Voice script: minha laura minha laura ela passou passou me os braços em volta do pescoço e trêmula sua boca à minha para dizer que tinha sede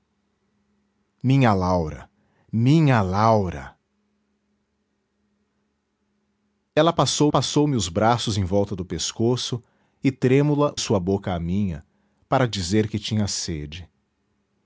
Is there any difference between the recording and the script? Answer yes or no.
no